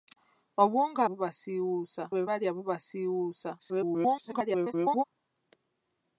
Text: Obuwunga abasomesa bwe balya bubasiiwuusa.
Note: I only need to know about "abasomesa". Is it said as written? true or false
false